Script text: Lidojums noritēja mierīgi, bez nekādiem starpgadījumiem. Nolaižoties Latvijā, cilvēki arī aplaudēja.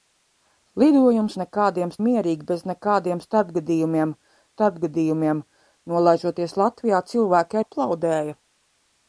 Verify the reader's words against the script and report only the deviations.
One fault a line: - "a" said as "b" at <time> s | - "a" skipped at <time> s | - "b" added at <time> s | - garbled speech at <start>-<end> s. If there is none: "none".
- "noritēja" said as "nekādiem" at 1.4 s
- "starpgadījumiem" added at 4.5 s
- "arī" skipped at 7.6 s